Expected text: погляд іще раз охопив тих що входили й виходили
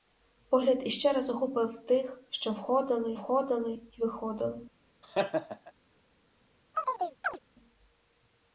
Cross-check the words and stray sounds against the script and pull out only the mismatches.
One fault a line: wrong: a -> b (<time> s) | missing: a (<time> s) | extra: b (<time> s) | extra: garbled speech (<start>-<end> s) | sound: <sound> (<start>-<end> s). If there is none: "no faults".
extra: входили (3.1 s)
sound: laugh (5.0-5.7 s)
sound: chirp (6.7-7.4 s)